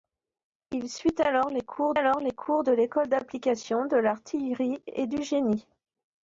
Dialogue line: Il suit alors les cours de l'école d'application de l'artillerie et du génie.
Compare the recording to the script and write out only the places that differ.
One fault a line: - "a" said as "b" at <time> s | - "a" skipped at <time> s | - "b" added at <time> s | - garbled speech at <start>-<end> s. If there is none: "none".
- "alors les cours" added at 1.9 s